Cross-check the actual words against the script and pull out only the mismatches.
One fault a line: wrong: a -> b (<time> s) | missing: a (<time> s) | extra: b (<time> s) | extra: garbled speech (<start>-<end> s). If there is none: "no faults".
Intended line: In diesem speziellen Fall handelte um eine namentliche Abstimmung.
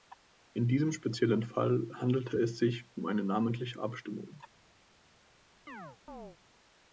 extra: es sich (2.4 s)